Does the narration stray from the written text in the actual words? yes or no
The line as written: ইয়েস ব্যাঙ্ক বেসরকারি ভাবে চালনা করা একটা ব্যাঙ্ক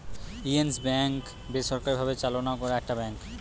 no